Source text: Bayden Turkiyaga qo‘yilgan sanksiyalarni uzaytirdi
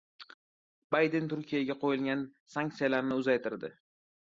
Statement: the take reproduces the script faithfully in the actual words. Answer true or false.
true